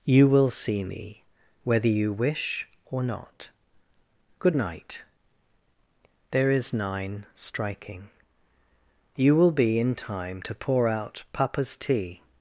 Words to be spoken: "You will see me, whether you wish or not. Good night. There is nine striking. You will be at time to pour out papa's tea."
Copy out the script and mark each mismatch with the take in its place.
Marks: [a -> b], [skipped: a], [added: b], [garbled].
"You will see me, whether you wish or not. Good night. There is nine striking. You will be [at -> in] time to pour out papa's tea."